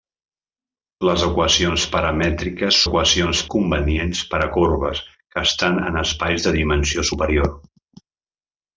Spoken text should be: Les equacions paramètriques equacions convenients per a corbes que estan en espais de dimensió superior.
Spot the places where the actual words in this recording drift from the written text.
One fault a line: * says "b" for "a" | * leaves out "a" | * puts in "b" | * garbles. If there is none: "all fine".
all fine